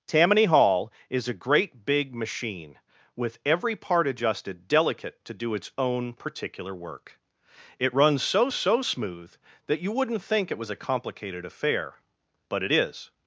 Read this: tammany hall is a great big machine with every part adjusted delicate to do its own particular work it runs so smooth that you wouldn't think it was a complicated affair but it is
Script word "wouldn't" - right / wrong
right